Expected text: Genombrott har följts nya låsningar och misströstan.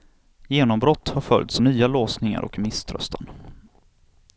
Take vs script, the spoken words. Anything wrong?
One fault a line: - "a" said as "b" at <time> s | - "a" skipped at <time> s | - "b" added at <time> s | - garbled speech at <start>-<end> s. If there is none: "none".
none